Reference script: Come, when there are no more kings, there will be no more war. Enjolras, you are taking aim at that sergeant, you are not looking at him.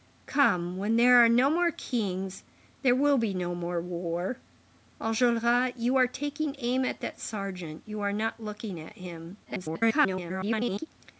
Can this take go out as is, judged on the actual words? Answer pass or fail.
fail